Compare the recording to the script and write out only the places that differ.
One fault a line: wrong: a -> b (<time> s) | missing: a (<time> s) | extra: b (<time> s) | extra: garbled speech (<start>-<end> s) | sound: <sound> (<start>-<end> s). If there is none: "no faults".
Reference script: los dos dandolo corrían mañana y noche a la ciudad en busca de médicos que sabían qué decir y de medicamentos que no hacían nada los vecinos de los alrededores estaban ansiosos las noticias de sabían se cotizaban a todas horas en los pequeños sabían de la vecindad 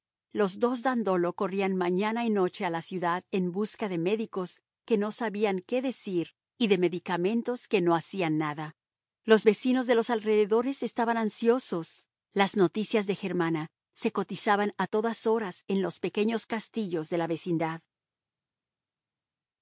extra: no (5.0 s)
wrong: sabían -> germana (13.1 s)
wrong: sabían -> castillos (16.5 s)